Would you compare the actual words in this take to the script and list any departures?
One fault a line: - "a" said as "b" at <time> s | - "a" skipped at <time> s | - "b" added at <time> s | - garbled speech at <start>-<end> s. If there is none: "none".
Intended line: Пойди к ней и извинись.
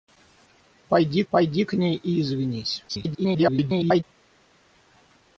- "пойди" added at 1.3 s
- garbled speech at 2.9-4.0 s